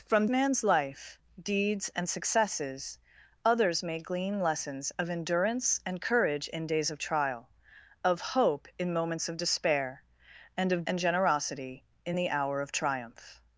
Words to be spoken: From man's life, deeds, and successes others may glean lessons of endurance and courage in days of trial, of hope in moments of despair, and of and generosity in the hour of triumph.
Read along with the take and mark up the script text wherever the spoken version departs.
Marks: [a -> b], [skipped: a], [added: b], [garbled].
From man's life, deeds, and successes others may glean lessons of endurance and courage in days of trial, of hope in moments of despair, and of and generosity in the hour of triumph.